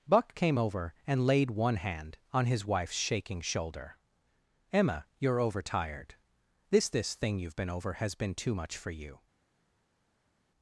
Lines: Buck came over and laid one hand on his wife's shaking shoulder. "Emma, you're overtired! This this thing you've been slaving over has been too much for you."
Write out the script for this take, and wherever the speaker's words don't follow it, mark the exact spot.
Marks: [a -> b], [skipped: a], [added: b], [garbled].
Buck came over and laid one hand on his wife's shaking shoulder. "Emma, you're overtired! This this thing you've been [skipped: slaving] over has been too much for you."